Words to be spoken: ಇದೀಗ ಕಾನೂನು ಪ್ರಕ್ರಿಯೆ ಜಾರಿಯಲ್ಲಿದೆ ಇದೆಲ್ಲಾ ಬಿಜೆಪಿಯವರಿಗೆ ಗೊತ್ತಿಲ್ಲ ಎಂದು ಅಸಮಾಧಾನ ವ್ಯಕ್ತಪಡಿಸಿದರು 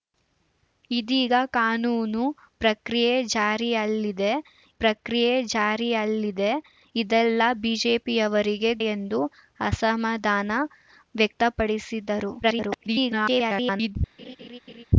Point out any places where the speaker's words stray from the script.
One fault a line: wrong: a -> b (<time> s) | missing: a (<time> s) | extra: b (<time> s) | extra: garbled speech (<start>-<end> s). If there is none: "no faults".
extra: ಪ್ರಕ್ರಿಯೆ ಜಾರಿಯಲ್ಲಿದೆ (4.8 s)
missing: ಗೊತ್ತಿಲ್ಲ (8.7 s)
extra: garbled speech (12.4-14.0 s)